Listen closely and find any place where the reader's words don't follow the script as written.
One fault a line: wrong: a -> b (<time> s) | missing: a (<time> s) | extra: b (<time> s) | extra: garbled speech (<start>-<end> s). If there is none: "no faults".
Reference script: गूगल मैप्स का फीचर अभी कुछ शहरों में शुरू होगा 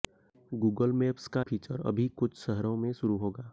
no faults